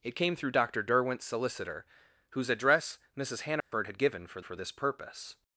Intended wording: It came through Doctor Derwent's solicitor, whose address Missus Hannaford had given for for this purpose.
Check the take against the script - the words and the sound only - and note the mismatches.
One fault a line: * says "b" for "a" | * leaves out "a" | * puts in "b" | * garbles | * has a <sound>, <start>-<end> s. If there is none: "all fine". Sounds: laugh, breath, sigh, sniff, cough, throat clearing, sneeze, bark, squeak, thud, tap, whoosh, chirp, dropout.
* has a dropout, 3.6-3.7 s